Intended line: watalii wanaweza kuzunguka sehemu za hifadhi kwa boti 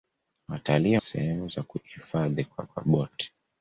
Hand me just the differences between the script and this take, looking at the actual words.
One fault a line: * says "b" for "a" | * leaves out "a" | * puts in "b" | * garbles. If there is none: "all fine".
* leaves out "wanaweza kuzunguka"
* puts in "kwa"